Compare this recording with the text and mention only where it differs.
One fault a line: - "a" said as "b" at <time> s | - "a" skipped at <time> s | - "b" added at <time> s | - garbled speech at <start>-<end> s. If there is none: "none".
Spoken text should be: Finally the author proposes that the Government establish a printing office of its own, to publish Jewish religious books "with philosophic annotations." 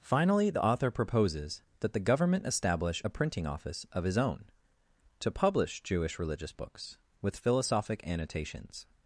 - "its" said as "his" at 4.0 s